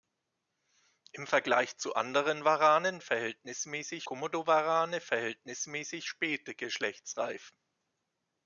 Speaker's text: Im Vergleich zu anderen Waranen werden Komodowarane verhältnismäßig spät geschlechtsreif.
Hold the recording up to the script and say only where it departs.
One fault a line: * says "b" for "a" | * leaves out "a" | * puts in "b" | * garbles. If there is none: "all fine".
* says "verhältnismäßig" for "werden"